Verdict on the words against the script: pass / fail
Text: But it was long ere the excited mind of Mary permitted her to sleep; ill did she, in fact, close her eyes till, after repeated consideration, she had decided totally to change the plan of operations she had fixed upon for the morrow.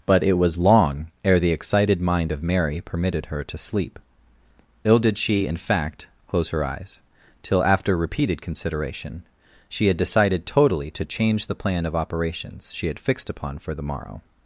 pass